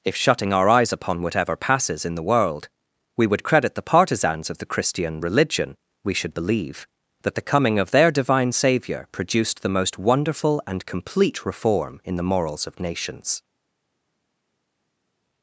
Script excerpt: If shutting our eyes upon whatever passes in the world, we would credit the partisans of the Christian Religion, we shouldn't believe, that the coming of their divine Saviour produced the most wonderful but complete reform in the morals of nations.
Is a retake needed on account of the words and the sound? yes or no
yes